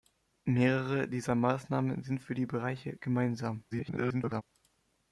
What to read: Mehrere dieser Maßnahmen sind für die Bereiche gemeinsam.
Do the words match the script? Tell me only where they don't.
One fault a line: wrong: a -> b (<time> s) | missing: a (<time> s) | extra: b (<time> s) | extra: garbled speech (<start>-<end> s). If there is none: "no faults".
extra: garbled speech (3.7-4.4 s)